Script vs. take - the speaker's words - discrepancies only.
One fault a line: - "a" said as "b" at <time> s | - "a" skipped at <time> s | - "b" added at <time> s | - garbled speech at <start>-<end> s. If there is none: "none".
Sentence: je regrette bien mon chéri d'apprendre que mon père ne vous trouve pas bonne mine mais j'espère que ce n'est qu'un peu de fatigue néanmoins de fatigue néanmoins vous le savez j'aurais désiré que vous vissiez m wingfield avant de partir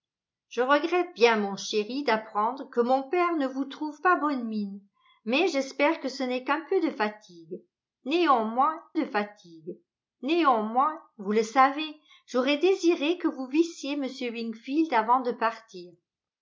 none